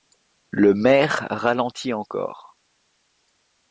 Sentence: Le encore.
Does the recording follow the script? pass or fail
fail